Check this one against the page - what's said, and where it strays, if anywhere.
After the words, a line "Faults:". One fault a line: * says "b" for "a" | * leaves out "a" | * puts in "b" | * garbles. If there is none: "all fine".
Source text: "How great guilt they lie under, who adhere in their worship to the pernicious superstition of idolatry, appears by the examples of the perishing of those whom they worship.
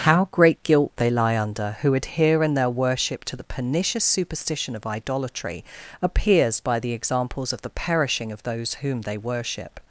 "How great guilt they lie under, who adhere in their worship to the pernicious superstition of idolatry, appears by the examples of the perishing of those whom they worship.
Faults:
all fine